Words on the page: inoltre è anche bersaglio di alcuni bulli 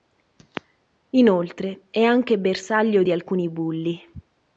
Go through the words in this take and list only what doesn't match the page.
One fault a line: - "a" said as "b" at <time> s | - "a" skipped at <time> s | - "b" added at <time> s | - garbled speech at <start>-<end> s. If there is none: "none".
none